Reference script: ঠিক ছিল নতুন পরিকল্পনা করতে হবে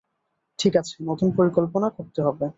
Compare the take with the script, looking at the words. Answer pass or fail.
fail